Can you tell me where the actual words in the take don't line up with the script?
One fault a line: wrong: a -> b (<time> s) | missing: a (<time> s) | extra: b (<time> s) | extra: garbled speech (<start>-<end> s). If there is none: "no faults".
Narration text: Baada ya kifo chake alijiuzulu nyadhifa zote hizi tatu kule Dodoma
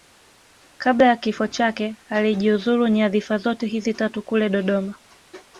wrong: Baada -> Kabla (0.8 s)